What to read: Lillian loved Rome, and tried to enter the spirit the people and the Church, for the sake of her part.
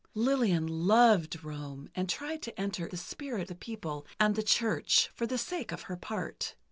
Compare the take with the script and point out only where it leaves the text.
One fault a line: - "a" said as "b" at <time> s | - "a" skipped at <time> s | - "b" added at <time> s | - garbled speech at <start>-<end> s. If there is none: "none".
none